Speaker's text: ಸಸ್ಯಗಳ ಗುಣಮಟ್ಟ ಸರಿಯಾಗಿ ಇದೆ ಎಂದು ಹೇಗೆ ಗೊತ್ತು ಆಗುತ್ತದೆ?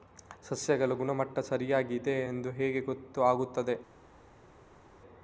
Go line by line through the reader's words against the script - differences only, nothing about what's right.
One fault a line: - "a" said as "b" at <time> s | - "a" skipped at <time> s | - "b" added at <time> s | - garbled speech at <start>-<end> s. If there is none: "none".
none